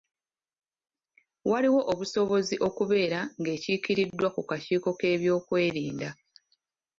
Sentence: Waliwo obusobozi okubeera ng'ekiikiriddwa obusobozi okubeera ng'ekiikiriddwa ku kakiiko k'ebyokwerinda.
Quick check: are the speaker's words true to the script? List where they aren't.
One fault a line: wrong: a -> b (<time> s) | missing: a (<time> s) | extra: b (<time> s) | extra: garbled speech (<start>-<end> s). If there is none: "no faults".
missing: obusobozi okubeera ng'ekiikiriddwa (4.3 s)